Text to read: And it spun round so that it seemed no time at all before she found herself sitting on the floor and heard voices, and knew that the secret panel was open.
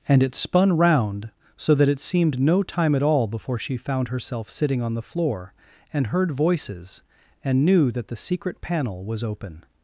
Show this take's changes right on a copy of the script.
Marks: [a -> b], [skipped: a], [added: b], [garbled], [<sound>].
And it spun round so that it seemed no time at all before she found herself sitting on the floor and heard voices, and knew that the secret panel was open.